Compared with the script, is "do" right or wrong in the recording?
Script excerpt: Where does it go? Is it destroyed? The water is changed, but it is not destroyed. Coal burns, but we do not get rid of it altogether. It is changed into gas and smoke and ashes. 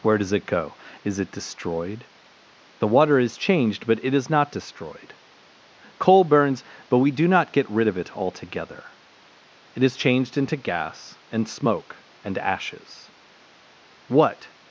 right